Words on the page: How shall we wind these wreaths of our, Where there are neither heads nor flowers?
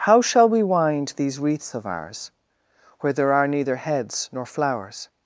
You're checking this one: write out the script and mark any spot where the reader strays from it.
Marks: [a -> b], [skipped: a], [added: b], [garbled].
How shall we wind these wreaths of [our, -> ours] Where there are neither heads nor flowers?